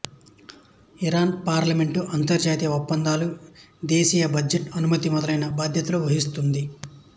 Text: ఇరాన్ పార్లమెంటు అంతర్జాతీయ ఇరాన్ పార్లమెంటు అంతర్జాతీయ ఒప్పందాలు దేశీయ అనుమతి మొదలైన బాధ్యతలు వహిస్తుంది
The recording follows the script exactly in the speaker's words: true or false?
false